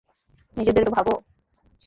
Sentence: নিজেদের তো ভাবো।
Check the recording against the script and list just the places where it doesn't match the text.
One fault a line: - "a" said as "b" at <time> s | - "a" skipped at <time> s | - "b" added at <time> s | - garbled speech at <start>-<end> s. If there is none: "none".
none